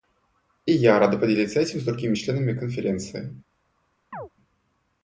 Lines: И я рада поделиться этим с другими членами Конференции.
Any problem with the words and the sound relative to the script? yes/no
yes